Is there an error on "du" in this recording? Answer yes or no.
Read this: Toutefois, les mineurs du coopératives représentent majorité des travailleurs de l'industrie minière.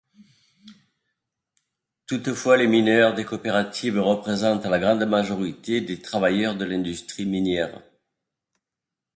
yes